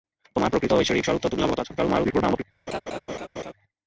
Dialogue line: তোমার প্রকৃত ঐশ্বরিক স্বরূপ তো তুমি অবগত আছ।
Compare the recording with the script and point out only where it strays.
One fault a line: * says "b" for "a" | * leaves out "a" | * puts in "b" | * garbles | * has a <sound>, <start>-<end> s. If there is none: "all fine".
* garbles
* has a laugh, 2.7-3.5 s